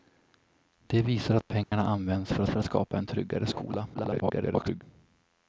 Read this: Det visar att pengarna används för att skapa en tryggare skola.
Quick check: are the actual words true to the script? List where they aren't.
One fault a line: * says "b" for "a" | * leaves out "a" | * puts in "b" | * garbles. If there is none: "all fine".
* puts in "för"
* garbles